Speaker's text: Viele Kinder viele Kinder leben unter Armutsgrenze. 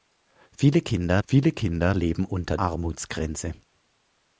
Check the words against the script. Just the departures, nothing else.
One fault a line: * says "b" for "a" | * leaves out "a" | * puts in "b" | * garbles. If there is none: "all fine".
all fine